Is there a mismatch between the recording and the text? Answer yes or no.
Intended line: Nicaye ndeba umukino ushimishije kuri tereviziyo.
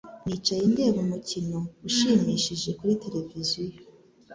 no